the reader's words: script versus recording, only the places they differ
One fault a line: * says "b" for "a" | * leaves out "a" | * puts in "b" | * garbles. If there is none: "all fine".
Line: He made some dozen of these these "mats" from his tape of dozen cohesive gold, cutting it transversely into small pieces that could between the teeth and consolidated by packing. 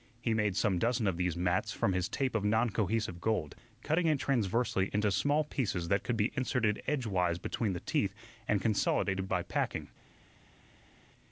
* leaves out "these"
* says "non" for "dozen"
* puts in "be inserted edgewise"